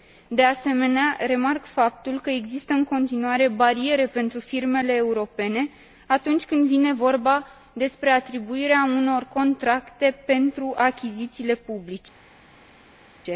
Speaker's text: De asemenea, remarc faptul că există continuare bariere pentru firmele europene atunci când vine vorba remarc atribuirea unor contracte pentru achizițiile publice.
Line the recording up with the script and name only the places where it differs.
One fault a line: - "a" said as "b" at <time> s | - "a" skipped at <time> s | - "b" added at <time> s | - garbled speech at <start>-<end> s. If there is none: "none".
- "în" added at 2.7 s
- "remarc" said as "despre" at 7.7 s